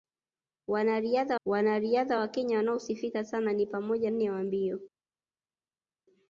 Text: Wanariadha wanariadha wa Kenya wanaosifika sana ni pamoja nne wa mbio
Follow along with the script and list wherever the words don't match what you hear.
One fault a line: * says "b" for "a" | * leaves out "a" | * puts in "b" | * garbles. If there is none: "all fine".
all fine